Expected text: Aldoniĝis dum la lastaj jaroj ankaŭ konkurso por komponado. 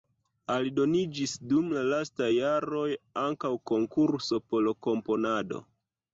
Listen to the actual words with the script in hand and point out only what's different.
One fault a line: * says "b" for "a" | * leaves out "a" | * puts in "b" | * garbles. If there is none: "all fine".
all fine